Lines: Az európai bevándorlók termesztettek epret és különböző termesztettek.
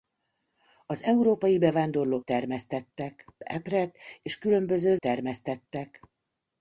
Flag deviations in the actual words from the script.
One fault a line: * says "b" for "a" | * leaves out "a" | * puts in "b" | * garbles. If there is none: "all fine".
all fine